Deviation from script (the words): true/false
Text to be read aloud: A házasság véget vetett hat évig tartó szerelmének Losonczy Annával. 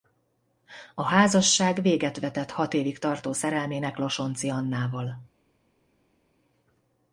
false